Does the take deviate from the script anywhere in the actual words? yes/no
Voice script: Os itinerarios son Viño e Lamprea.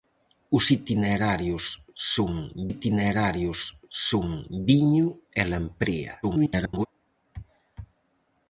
yes